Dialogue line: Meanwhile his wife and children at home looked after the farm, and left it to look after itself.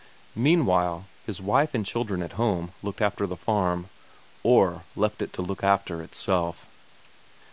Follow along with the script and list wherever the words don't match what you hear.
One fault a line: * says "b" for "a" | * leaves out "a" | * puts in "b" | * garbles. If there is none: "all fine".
* says "or" for "and"